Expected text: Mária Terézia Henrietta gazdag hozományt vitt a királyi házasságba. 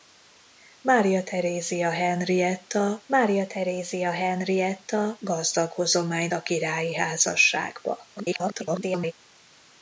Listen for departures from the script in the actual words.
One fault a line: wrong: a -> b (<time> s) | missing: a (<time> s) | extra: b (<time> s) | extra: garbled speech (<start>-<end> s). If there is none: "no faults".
extra: mária Terézia Henrietta (3.1 s)
missing: vitt (6.3 s)
extra: garbled speech (8.2-9.1 s)